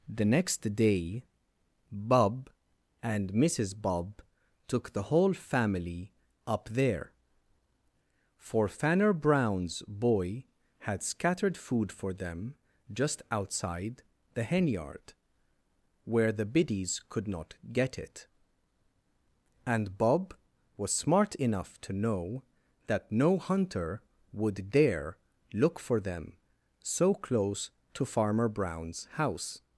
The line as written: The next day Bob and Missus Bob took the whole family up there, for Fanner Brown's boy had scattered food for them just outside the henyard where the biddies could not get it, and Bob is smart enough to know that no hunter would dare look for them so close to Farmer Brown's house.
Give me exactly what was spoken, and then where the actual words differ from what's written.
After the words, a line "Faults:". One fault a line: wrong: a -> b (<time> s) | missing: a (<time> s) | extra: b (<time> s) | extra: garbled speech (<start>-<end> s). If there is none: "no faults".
The next day Bob and Missus Bob took the whole family up there, for Fanner Brown's boy had scattered food for them just outside the henyard where the biddies could not get it, and Bob was smart enough to know that no hunter would dare look for them so close to Farmer Brown's house.
Faults:
wrong: is -> was (20.8 s)